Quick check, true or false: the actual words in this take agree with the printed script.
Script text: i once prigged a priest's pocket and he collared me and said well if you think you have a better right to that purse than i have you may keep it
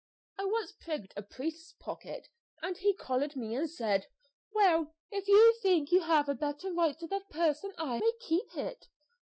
false